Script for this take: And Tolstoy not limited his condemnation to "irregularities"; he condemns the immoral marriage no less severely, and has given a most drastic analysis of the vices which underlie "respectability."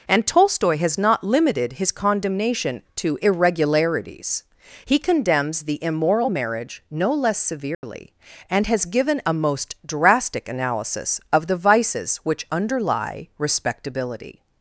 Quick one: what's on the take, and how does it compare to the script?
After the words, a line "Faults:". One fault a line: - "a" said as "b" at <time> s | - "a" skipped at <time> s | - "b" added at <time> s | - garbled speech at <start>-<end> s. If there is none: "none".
And Tolstoy has not limited his condemnation to "irregularities"; he condemns the immoral marriage no less severely, and has given a most drastic analysis of the vices which underlie "respectability."
Faults:
- "has" added at 0.8 s